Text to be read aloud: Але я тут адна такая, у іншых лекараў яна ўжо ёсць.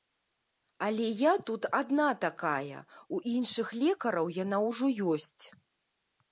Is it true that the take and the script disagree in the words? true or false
false